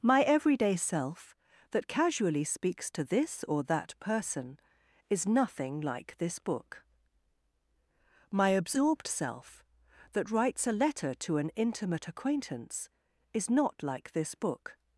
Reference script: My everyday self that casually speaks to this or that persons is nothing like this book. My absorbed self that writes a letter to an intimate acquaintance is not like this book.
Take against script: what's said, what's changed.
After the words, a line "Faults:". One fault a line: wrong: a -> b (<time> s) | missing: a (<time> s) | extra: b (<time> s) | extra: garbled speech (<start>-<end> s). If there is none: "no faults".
My everyday self that casually speaks to this or that person is nothing like this book. My absorbed self that writes a letter to an intimate acquaintance is not like this book.
Faults:
wrong: persons -> person (4.0 s)